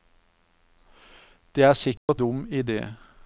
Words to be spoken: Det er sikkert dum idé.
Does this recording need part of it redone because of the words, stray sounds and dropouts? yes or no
yes